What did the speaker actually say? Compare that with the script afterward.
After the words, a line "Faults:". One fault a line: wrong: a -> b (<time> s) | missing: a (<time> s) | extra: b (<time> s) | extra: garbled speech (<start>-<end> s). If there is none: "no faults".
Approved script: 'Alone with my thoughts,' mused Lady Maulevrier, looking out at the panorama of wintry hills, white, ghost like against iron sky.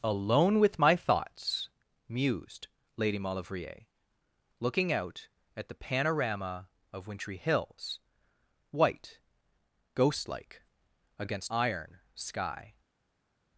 'Alone with my thoughts,' mused Lady Maulevrier, looking out at the panorama of wintry hills, white, ghost like against iron sky.
Faults:
no faults